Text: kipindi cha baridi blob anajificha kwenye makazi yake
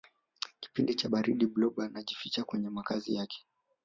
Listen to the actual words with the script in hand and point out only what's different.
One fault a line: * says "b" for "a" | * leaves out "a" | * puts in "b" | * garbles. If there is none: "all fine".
all fine